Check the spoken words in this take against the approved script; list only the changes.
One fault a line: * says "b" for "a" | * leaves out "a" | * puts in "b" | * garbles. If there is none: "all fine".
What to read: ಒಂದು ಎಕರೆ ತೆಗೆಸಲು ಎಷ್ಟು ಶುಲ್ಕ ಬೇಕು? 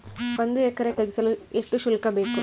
all fine